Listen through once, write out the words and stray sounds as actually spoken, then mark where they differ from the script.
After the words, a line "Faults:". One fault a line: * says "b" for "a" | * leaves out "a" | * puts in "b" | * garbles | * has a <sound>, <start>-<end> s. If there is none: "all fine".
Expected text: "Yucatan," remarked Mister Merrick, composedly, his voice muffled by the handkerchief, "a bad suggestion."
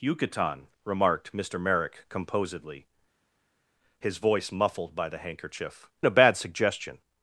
"Yucatan," remarked Mister Merrick, composedly, his voice muffled by the handkerchief, "a bad suggestion."
Faults:
all fine